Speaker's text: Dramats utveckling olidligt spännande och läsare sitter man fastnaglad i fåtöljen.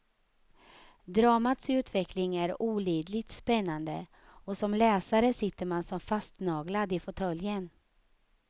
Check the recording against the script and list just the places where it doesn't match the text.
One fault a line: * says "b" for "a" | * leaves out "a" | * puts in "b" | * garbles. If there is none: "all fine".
* puts in "är"
* puts in "som"
* puts in "som"